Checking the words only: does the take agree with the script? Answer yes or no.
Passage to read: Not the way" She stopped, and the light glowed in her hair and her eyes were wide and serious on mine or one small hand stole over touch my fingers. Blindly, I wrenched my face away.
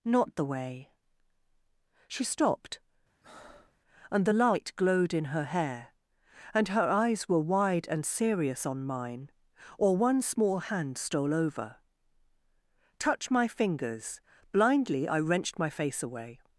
yes